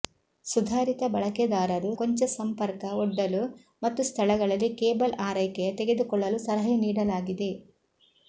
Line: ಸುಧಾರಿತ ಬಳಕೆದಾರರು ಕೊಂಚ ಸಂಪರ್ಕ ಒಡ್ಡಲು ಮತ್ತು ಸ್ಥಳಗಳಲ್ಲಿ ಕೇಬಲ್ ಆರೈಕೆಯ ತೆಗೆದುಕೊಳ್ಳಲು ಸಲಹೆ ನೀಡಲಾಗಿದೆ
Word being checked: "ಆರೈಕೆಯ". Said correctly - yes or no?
yes